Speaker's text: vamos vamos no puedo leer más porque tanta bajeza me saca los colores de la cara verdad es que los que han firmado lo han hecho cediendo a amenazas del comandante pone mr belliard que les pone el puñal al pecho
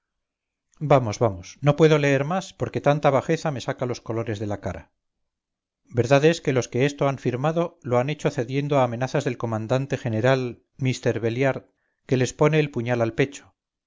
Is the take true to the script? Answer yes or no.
no